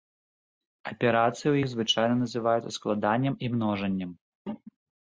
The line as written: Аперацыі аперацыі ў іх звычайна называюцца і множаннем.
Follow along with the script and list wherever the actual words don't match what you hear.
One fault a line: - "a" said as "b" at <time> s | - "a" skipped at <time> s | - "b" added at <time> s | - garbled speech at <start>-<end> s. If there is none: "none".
- "аперацыі" skipped at 1.4 s
- "складаннем" added at 2.8 s